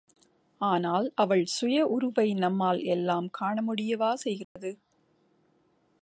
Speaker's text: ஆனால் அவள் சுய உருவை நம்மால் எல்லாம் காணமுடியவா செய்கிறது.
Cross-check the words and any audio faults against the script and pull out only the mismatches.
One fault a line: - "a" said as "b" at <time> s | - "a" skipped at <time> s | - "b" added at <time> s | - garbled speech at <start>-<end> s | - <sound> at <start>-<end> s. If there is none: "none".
- dropout at 4.4-4.6 s